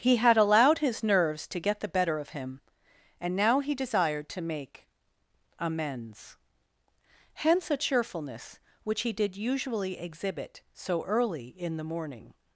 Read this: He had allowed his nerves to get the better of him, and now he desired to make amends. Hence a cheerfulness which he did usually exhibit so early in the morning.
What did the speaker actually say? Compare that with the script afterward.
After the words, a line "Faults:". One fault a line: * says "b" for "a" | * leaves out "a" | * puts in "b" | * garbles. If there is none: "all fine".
He had allowed his nerves to get the better of him, and now he desired to make amends. Hence a cheerfulness which he did usually exhibit so early in the morning.
Faults:
all fine